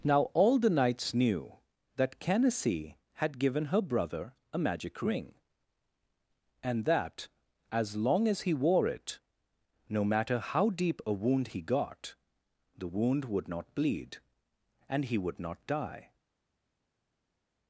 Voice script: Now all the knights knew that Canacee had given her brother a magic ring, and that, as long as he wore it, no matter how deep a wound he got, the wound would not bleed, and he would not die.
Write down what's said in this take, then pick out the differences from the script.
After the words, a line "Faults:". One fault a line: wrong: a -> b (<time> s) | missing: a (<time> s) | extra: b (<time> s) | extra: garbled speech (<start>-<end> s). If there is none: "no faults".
Now all the knights knew that Canacee had given her brother a magic ring, and that, as long as he wore it, no matter how deep a wound he got, the wound would not bleed, and he would not die.
Faults:
no faults